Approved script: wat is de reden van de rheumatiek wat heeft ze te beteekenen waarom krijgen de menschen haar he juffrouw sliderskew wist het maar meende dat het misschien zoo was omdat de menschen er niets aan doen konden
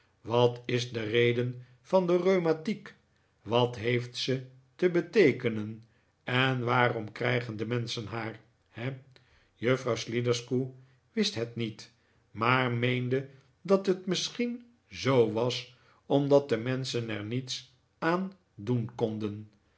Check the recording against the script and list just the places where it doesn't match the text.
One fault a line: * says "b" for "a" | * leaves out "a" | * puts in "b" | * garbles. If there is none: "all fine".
* puts in "en"
* puts in "niet"